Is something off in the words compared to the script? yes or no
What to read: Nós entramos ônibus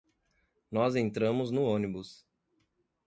yes